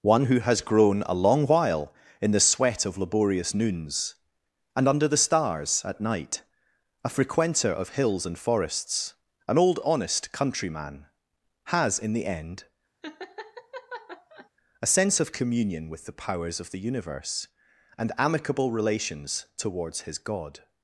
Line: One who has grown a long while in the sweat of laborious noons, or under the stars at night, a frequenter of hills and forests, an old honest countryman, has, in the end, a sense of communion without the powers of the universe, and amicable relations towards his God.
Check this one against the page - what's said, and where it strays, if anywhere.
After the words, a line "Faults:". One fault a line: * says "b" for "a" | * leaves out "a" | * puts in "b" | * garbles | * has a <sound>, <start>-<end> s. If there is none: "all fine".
One who has grown a long while in the sweat of laborious noons, and under the stars at night, a frequenter of hills and forests, an old honest countryman, has, in the end, a sense of communion with the powers of the universe, and amicable relations towards his God.
Faults:
* says "and" for "or"
* has a laugh, 13.0-14.5 s
* says "with" for "without"